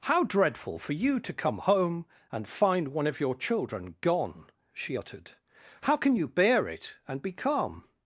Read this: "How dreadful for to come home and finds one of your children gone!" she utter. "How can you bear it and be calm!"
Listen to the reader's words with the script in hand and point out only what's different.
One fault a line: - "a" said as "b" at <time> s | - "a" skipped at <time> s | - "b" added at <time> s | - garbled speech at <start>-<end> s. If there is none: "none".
- "you" added at 0.9 s
- "finds" said as "find" at 2.5 s
- "utter" said as "uttered" at 4.9 s